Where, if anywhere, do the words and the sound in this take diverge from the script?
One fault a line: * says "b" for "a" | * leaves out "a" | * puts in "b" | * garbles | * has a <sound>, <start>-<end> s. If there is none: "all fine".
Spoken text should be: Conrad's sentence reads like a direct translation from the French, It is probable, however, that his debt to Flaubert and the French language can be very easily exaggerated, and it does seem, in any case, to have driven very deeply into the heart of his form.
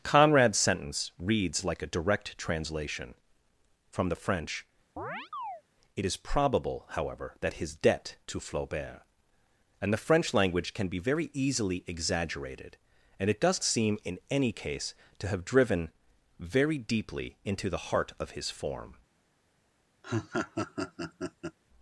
* has a chirp, 5.0-5.6 s
* has a laugh, 20.0-21.6 s